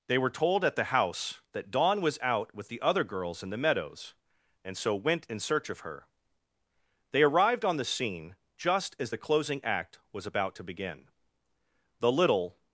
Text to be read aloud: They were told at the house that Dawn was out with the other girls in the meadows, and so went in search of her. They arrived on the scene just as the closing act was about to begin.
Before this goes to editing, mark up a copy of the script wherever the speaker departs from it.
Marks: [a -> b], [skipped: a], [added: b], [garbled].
They were told at the house that Dawn was out with the other girls in the meadows, and so went in search of her. They arrived on the scene just as the closing act was about to begin. [added: The little]